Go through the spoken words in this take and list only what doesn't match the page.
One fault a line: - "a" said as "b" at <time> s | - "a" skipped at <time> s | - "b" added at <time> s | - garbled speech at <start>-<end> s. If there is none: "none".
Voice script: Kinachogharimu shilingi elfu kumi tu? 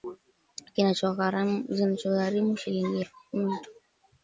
none